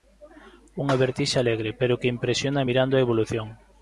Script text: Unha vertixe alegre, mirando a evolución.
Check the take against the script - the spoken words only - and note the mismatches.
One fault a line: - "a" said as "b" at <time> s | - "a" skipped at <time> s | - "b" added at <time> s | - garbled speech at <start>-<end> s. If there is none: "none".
- "pero que impresiona" added at 1.8 s